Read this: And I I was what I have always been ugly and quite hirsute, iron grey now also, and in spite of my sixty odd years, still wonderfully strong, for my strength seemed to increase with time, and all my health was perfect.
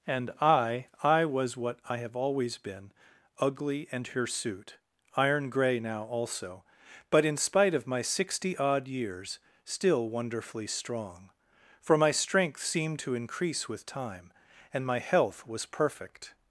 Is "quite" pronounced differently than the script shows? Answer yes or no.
yes